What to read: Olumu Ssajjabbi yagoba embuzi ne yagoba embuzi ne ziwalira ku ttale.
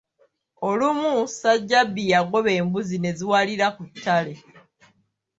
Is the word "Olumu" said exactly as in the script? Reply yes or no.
yes